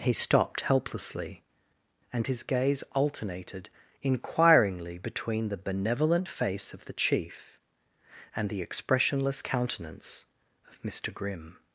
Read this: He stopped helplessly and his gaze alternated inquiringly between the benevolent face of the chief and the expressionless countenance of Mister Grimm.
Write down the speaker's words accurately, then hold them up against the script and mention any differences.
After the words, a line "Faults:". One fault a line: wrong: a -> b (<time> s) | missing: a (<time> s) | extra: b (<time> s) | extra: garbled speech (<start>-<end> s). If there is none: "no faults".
He stopped helplessly and his gaze alternated inquiringly between the benevolent face of the chief and the expressionless countenance of Mister Grimm.
Faults:
no faults